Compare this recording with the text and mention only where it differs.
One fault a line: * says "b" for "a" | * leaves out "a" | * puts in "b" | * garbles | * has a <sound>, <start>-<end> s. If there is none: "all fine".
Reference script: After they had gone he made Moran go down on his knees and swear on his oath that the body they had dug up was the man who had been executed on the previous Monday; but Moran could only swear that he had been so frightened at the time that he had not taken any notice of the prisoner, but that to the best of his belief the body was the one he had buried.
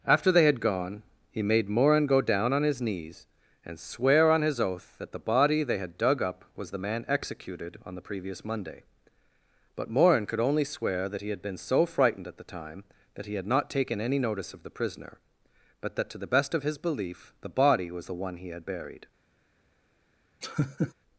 * leaves out "who had been"
* has a laugh, 20.4-20.9 s